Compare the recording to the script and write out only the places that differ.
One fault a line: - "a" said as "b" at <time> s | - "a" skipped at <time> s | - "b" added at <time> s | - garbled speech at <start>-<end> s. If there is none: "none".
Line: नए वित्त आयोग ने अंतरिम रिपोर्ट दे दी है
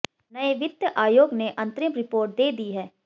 none